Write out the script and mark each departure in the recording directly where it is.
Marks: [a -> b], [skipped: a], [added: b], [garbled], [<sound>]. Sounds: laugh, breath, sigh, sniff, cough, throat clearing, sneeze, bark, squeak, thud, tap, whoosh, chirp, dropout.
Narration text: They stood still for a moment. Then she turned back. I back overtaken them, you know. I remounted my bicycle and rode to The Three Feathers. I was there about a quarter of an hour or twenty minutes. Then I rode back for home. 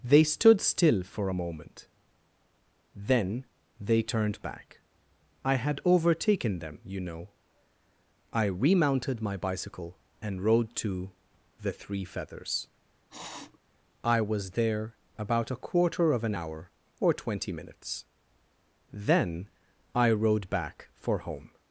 They stood still for a moment. Then [she -> they] turned back. I [back -> had] overtaken them, you know. I remounted my bicycle and rode to The Three Feathers. [sniff] I was there about a quarter of an hour or twenty minutes. Then I rode back for home.